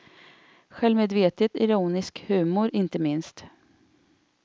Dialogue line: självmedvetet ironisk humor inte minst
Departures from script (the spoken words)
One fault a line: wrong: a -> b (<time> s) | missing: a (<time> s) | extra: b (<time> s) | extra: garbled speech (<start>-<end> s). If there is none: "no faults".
no faults